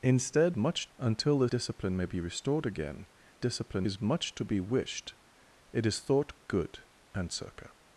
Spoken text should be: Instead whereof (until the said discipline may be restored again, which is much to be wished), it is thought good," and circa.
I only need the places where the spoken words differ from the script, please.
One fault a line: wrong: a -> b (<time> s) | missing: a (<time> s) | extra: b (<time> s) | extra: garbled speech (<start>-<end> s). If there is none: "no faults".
wrong: whereof -> much (0.6 s)
missing: said (1.5 s)
wrong: which -> discipline (3.4 s)